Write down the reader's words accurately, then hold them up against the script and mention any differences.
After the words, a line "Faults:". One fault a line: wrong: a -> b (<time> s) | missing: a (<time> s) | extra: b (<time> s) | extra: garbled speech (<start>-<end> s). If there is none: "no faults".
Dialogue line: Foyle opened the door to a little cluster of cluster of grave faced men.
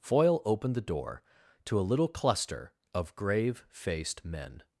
Foyle opened the door to a little cluster of grave faced men.
Faults:
missing: cluster of (3.1 s)